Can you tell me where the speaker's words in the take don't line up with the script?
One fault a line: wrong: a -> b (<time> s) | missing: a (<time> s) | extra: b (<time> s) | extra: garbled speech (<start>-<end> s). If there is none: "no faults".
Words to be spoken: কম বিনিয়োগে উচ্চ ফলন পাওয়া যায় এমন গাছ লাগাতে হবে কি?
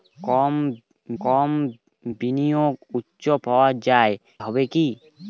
extra: কম (1.2 s)
missing: ফলন (3.2 s)
missing: এমন গাছ লাগাতে (4.1 s)